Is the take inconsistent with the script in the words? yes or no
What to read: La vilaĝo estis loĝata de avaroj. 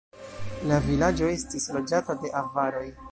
no